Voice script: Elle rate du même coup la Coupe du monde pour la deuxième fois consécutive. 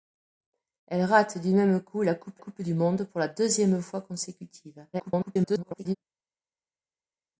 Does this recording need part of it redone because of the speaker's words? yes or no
yes